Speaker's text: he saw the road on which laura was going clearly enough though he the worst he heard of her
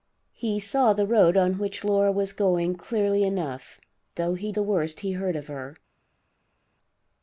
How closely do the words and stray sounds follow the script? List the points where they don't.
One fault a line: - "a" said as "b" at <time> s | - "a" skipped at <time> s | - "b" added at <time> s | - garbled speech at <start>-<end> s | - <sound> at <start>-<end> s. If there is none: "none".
none